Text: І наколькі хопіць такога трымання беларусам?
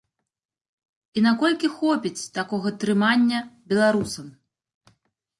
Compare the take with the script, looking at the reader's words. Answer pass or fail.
pass